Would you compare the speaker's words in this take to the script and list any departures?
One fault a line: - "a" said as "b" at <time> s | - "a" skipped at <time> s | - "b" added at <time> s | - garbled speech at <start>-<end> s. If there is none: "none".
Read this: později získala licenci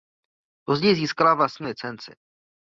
- "vlastní" added at 1.3 s